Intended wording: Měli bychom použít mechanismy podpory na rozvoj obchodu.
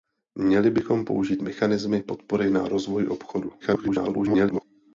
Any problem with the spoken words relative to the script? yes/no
yes